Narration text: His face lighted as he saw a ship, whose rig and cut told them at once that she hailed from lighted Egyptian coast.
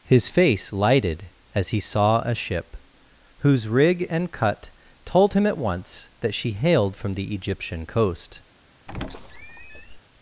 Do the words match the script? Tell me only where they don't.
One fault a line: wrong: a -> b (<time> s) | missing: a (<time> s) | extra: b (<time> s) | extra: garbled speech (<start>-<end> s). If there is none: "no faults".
wrong: them -> him (5.3 s)
wrong: lighted -> the (7.1 s)